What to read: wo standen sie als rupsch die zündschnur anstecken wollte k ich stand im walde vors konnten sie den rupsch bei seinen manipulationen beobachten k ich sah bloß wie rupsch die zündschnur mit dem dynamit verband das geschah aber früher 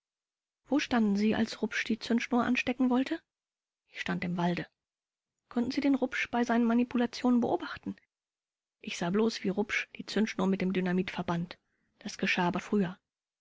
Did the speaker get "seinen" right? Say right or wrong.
right